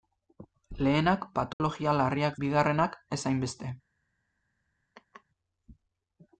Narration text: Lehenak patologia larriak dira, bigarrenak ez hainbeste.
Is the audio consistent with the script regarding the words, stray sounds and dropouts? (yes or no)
no